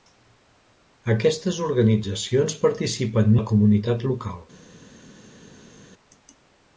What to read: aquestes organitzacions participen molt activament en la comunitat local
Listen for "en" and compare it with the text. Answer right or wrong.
wrong